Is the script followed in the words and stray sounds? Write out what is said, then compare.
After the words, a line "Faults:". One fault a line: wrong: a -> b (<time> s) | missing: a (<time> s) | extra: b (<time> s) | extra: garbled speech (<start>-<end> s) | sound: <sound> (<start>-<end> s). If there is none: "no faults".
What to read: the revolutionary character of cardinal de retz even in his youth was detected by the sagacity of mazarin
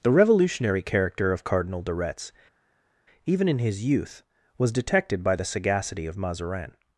the revolutionary character of cardinal de retz even in his youth was detected by the sagacity of mazarin
Faults:
no faults